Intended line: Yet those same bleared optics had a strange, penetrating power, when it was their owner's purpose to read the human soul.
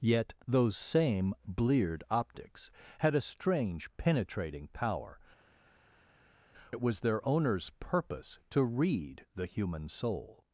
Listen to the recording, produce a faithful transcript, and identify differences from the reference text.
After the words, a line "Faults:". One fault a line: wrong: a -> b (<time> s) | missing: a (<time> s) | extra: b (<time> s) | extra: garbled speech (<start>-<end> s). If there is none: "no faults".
Yet those same bleared optics had a strange, penetrating power, it was their owner's purpose to read the human soul.
Faults:
missing: when (5.2 s)